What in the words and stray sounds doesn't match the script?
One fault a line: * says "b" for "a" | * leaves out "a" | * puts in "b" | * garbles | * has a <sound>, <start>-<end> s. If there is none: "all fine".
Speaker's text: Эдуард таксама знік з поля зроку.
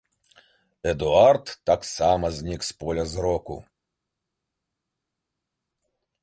all fine